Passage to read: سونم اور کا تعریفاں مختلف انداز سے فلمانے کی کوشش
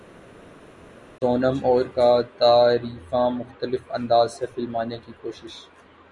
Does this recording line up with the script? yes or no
yes